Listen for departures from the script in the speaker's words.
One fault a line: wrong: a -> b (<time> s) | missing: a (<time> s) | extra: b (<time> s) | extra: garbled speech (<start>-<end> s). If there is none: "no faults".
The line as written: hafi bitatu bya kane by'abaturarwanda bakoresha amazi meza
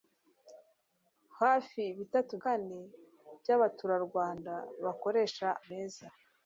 missing: bya (2.3 s)
missing: amazi (5.5 s)